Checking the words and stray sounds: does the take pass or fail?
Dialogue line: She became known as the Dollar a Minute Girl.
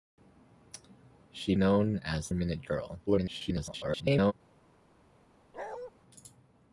fail